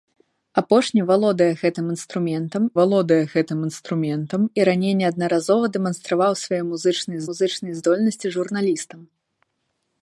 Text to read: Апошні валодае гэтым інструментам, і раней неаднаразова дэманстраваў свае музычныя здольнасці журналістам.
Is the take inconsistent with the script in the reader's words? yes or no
yes